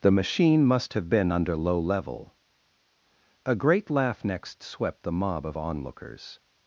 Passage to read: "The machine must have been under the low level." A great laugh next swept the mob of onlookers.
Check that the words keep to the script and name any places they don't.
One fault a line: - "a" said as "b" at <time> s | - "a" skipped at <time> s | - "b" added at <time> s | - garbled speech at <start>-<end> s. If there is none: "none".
- "the" skipped at 1.6 s